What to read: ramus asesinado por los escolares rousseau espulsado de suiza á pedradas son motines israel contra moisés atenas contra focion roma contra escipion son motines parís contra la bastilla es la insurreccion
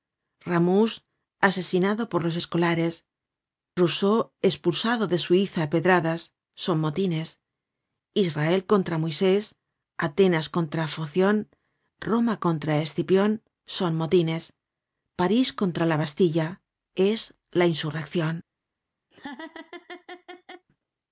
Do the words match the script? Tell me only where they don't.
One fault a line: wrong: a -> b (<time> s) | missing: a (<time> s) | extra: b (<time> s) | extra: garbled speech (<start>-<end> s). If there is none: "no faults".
no faults